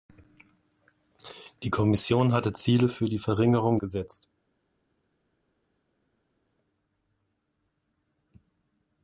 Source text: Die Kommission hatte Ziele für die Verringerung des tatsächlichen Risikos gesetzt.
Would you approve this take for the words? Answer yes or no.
no